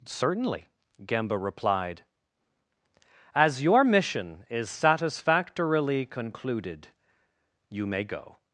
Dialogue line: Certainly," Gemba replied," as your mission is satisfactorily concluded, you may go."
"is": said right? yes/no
yes